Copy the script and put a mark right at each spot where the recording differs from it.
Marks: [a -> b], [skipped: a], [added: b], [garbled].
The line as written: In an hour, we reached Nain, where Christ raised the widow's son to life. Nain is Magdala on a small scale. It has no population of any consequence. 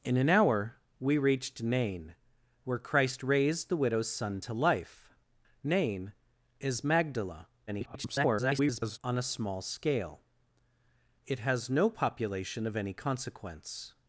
In an hour, we reached Nain, where Christ raised the widow's son to life. Nain is Magdala [garbled] on a small scale. It has no population of any consequence.